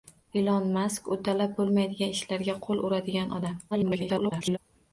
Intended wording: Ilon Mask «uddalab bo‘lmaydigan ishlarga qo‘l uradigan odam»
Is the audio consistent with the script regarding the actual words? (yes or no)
no